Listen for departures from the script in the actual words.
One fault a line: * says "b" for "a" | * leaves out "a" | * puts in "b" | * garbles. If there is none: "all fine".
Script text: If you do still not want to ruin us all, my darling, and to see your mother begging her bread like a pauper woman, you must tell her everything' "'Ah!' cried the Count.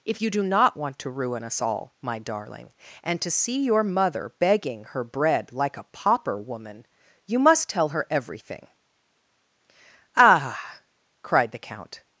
* leaves out "still"